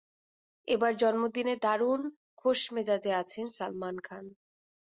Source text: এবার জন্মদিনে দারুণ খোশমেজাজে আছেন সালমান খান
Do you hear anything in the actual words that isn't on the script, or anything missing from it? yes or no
no